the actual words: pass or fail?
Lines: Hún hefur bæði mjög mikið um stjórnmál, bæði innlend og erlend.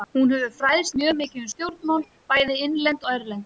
fail